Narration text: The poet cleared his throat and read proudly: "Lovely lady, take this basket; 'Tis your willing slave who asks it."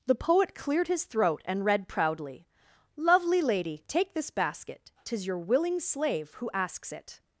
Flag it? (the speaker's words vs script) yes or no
no